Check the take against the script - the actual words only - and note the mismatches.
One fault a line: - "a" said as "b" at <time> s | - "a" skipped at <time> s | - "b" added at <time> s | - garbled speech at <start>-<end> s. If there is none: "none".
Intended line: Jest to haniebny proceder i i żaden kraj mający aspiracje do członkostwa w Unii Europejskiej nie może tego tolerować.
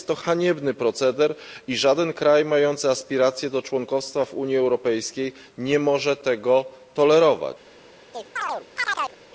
- "i" skipped at 1.8 s